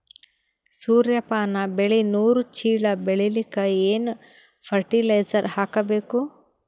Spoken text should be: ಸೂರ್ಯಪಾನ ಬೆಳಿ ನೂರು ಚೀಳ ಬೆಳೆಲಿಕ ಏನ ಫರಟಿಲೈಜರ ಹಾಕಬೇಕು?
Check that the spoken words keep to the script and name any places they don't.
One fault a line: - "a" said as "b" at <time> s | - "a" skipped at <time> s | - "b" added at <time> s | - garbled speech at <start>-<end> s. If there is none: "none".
none